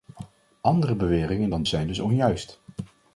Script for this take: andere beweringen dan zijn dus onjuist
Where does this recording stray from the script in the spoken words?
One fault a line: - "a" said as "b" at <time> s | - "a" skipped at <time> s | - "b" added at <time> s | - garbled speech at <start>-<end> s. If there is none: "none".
none